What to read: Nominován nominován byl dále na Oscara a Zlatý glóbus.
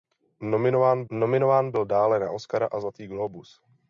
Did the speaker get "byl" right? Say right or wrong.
right